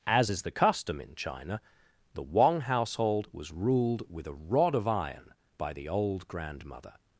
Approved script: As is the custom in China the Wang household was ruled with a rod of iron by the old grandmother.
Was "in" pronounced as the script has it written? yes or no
yes